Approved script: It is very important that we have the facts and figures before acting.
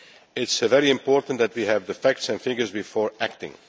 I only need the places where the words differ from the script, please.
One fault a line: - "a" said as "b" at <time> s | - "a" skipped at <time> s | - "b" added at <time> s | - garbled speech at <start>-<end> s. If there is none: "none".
none